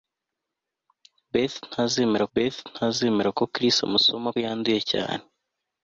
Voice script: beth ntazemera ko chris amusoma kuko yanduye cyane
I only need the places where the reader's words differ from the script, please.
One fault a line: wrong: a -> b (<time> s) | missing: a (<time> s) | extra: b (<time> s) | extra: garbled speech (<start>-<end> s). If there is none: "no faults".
extra: beth ntazemera (2.3 s)
missing: kuko (4.3 s)